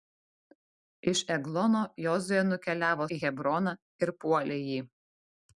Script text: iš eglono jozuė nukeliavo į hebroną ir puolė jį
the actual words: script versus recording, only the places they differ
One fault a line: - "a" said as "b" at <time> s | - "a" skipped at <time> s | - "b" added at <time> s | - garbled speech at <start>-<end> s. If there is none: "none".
none